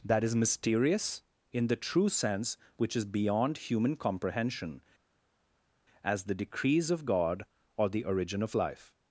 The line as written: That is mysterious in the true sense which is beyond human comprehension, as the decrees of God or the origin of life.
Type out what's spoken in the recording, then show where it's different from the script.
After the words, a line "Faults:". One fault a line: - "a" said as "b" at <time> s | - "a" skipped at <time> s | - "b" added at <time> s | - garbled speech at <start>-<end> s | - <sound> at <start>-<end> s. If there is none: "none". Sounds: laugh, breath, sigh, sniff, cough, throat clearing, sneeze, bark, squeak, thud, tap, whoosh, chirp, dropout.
That is mysterious in the true sense which is beyond human comprehension, as the decrees of God or the origin of life.
Faults:
none